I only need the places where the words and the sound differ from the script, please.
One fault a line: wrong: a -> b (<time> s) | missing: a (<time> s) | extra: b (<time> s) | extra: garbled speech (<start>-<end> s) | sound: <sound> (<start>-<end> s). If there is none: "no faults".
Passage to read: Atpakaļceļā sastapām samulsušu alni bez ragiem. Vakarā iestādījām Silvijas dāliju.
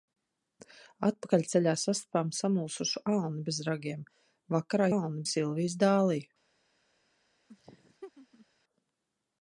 wrong: iestādījām -> alni (5.0 s)
sound: laugh (7.5-8.5 s)